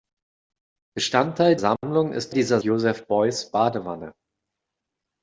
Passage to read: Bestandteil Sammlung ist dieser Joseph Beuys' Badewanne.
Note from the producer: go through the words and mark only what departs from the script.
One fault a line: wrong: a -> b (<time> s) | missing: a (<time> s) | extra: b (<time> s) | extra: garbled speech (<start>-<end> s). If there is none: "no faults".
no faults